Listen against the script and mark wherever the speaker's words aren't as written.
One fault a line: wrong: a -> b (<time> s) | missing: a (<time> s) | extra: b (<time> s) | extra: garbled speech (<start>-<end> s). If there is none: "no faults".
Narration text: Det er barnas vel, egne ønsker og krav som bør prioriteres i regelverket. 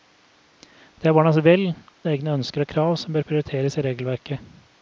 no faults